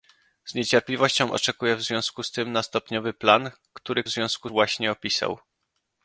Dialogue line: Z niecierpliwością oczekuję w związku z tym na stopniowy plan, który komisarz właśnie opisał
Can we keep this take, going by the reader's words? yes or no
no